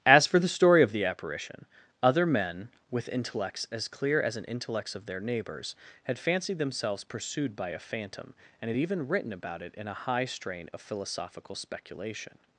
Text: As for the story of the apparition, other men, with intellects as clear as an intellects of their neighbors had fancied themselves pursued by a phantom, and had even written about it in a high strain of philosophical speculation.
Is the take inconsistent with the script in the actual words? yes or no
no